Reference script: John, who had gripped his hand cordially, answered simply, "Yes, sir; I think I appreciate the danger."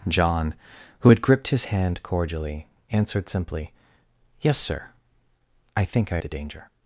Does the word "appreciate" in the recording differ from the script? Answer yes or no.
yes